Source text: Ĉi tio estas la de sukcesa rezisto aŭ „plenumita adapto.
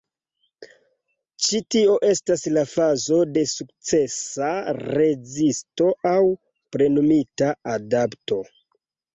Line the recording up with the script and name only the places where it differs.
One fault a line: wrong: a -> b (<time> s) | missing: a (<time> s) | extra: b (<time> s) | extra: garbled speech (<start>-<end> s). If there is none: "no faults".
extra: fazo (2.7 s)